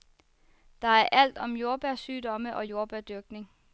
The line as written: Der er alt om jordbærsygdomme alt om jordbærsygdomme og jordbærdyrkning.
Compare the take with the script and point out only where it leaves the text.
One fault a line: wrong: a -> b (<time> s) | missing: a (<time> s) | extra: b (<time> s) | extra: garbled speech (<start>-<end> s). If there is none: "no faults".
missing: alt om jordbærsygdomme (2.6 s)